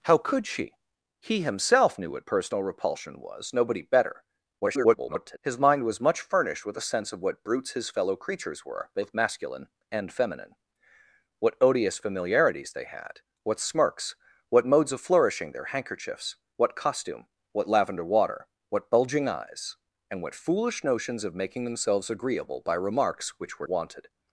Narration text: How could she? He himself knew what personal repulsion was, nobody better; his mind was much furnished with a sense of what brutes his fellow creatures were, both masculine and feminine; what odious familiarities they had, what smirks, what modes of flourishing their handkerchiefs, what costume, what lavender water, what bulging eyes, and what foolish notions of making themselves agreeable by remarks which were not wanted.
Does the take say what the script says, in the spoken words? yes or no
no